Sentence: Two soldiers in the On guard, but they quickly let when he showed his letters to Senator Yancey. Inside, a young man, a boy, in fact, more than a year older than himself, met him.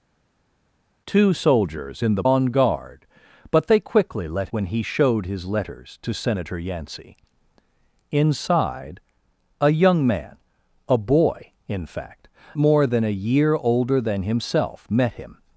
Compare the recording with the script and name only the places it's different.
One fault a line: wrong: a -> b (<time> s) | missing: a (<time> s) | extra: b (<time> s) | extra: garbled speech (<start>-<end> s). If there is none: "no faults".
no faults